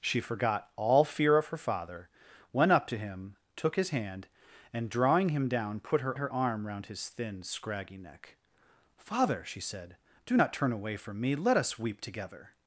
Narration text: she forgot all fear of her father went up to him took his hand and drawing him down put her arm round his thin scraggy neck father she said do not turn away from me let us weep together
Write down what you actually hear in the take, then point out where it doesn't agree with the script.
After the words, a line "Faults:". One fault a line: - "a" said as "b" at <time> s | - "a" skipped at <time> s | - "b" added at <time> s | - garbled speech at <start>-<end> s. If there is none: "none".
she forgot all fear of her father went up to him took his hand and drawing him down put her her arm round his thin scraggy neck father she said do not turn away from me let us weep together
Faults:
- "her" added at 6.2 s